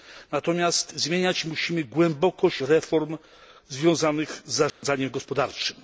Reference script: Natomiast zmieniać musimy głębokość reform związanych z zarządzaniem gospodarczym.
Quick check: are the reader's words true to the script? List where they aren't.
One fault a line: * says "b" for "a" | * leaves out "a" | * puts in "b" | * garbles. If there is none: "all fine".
all fine